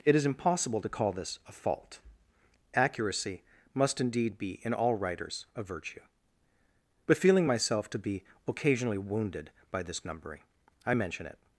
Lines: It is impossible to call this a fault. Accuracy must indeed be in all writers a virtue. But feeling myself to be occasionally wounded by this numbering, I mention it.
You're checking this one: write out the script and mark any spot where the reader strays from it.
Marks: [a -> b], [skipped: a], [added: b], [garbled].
It is impossible to call this a fault. Accuracy must indeed be in all writers a virtue. But feeling myself to be occasionally wounded by this numbering, I mention it.